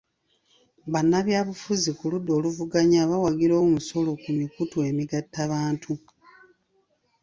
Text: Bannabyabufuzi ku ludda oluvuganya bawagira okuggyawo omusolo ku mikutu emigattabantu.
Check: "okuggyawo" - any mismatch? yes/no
yes